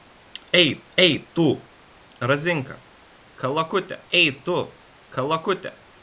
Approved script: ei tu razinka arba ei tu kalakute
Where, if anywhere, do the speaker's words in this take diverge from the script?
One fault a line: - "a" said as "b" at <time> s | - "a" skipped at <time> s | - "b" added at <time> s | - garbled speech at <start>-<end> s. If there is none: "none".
- "ei" added at 1.0 s
- "arba" said as "kalakute" at 3.3 s